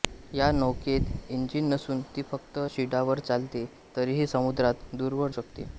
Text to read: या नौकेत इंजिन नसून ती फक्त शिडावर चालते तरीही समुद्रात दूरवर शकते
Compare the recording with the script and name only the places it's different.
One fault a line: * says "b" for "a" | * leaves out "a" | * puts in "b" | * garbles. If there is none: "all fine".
all fine